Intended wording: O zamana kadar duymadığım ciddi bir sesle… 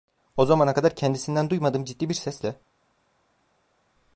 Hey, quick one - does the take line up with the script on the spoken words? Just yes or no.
no